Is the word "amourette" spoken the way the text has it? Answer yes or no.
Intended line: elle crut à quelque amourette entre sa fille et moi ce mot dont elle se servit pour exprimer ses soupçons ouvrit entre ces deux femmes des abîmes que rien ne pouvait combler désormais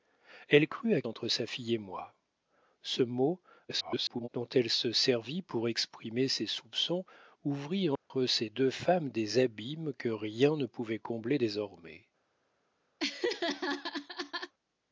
no